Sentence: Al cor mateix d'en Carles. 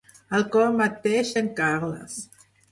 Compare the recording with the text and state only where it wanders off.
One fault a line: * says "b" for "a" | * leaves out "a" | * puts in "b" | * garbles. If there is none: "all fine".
all fine